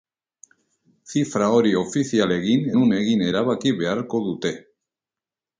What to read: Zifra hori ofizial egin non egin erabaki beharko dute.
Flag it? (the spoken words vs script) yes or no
no